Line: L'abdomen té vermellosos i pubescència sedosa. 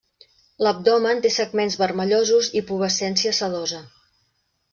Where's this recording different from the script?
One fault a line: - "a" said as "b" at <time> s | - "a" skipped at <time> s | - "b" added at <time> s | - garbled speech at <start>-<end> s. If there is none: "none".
- "segments" added at 1.4 s